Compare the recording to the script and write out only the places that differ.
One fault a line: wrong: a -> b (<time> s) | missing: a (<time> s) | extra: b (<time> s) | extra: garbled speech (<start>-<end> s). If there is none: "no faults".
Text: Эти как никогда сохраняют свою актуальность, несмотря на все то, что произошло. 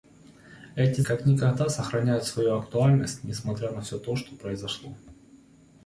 no faults